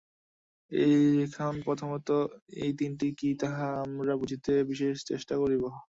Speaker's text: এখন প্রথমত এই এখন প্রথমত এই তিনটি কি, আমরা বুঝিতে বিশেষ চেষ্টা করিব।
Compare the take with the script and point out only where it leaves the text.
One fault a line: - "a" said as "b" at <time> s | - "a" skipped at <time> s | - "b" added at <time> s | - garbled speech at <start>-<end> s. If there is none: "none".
- "এখন প্রথমত এই" skipped at 2.7 s
- "তাহা" added at 3.4 s